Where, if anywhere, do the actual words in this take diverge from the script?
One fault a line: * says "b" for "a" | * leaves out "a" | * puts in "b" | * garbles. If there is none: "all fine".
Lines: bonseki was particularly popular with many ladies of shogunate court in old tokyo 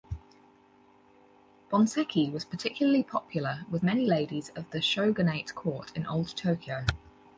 * puts in "the"